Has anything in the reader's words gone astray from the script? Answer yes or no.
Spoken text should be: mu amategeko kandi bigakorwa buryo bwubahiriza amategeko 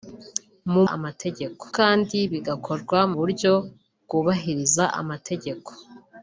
no